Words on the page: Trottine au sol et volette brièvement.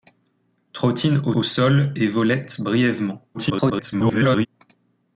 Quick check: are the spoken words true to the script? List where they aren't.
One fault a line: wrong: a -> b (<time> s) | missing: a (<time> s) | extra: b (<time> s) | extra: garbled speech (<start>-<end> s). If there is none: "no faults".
extra: au (1.3 s)
extra: garbled speech (3.3-4.5 s)